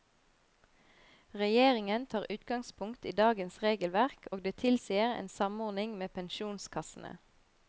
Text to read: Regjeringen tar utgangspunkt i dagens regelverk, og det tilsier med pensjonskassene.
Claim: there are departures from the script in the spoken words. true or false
true